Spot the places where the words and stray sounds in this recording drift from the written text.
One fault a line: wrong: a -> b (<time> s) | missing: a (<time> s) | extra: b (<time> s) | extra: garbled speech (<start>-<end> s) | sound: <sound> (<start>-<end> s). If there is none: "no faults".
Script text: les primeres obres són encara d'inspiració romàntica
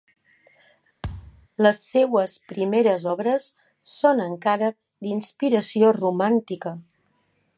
sound: thud (1.0-1.5 s)
extra: seues (1.9 s)